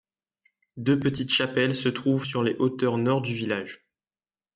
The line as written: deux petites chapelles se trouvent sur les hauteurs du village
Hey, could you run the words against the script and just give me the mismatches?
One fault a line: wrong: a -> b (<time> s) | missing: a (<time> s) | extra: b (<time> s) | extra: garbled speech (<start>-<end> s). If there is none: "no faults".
extra: nord (3.0 s)